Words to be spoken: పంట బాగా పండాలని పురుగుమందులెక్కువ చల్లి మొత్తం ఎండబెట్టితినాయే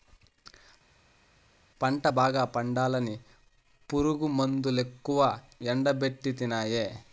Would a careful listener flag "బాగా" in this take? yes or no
no